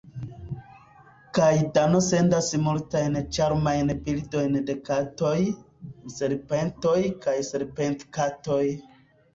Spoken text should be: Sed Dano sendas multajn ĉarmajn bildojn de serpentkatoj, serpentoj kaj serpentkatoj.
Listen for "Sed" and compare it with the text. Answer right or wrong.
wrong